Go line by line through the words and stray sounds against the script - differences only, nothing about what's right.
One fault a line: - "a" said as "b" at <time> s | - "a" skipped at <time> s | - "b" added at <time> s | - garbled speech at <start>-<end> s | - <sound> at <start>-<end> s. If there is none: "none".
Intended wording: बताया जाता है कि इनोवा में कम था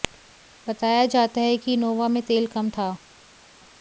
- "तेल" added at 2.2 s